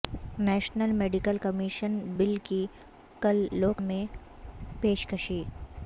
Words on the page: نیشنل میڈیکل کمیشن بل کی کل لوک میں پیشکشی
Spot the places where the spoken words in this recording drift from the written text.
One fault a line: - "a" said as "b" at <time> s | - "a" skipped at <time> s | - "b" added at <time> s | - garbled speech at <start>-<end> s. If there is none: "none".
none